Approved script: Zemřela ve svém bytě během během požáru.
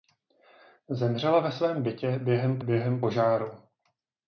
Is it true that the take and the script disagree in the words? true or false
false